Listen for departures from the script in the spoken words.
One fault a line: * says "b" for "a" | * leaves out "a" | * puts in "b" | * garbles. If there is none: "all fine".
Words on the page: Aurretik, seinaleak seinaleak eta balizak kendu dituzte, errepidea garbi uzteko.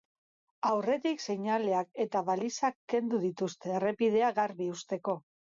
* leaves out "seinaleak"